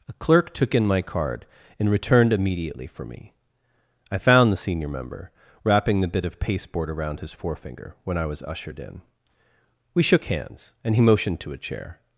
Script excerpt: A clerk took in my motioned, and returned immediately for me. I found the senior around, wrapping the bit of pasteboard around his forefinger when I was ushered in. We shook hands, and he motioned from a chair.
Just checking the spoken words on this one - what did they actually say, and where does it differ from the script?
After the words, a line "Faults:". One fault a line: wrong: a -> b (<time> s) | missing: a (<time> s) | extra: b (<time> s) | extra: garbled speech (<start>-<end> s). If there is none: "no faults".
A clerk took in my card, and returned immediately for me. I found the senior member, wrapping the bit of pasteboard around his forefinger when I was ushered in. We shook hands, and he motioned to a chair.
Faults:
wrong: motioned -> card (1.0 s)
wrong: around -> member (4.9 s)
wrong: from -> to (11.4 s)